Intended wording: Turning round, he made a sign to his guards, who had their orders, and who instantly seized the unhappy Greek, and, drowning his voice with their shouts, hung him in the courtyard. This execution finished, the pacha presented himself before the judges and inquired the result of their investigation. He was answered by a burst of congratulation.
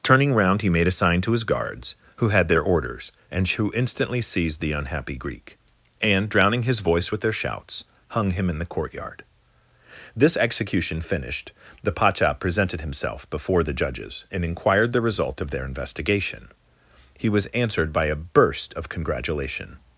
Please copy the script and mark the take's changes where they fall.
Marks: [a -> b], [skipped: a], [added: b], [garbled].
Turning round, he made a sign to his guards, who had their orders, and who instantly seized the unhappy Greek, and, drowning his voice with their shouts, hung him in the courtyard. This execution finished, the pacha presented himself before the judges and inquired the result of their investigation. He was answered by a burst of congratulation.